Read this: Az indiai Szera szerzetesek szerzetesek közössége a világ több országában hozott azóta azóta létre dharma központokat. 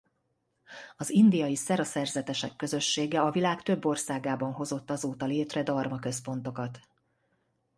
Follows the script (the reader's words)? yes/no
no